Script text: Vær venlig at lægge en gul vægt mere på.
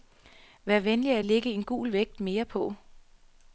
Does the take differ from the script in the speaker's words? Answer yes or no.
no